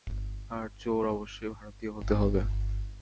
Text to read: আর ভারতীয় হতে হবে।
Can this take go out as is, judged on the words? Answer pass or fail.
fail